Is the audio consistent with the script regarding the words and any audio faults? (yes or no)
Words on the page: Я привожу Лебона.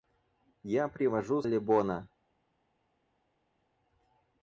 yes